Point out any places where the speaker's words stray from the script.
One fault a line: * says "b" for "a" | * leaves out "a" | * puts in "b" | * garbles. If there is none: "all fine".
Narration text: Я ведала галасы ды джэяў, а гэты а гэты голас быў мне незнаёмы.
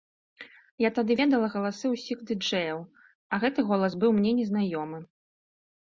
* puts in "тады"
* puts in "ўсіх"
* leaves out "а гэты"